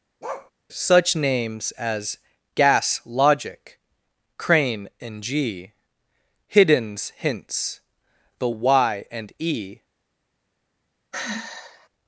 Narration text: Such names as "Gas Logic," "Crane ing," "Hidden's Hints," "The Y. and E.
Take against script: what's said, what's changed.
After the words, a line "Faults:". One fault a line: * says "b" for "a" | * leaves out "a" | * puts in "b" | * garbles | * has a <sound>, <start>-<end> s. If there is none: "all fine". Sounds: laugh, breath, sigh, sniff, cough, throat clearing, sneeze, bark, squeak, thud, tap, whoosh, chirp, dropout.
Such names as "Gas Logic," "Crane and g," "Hidden's Hints," "The Y. and E.
Faults:
* has a bark, 0.2-0.5 s
* says "and g" for "ing"
* has a sigh, 11.1-11.9 s